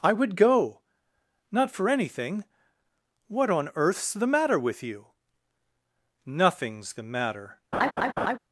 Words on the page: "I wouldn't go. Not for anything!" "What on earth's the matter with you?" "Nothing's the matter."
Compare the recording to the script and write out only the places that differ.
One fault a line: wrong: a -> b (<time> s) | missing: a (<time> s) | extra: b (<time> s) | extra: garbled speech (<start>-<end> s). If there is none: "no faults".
wrong: wouldn't -> would (0.1 s)